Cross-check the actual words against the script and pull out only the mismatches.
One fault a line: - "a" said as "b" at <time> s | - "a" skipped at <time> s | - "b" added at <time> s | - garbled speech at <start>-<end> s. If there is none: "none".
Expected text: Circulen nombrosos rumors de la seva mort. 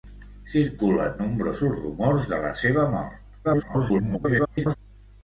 - garbled speech at 3.4-4.8 s